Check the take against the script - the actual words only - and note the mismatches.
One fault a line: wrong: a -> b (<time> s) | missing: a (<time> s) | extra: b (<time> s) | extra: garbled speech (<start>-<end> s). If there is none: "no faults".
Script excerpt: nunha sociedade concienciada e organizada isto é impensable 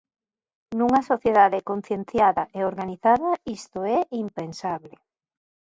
no faults